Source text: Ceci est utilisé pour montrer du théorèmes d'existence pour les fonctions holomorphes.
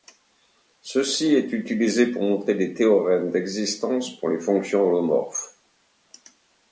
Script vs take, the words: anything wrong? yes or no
yes